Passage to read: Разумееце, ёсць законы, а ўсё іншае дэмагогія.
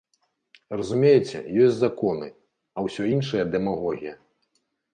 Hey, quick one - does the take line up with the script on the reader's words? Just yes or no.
yes